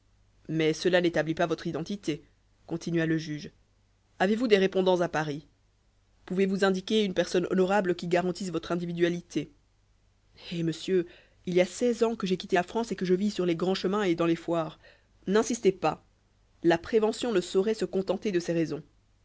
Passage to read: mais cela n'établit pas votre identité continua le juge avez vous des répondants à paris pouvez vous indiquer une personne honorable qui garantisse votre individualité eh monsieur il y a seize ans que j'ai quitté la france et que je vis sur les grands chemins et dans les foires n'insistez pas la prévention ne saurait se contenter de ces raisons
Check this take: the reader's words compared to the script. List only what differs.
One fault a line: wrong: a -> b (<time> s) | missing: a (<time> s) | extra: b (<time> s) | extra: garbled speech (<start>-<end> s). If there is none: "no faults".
no faults